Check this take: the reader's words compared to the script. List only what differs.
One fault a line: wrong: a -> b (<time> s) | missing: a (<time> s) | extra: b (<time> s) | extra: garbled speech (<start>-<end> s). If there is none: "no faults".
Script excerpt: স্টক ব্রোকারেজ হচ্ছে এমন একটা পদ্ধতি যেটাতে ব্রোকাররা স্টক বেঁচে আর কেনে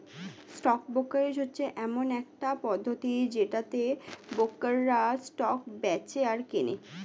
no faults